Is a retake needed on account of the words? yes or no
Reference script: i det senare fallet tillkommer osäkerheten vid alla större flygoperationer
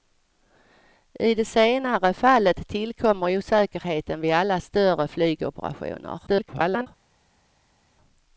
yes